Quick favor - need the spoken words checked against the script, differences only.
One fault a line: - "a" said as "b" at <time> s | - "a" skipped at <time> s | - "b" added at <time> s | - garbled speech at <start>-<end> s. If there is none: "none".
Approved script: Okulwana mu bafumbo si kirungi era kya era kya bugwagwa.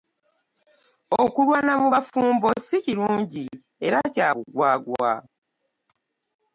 - "era kya" skipped at 4.3 s